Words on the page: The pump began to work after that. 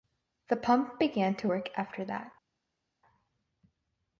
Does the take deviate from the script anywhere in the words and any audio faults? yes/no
no